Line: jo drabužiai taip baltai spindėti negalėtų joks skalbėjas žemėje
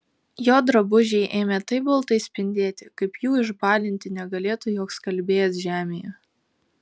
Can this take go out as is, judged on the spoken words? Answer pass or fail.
fail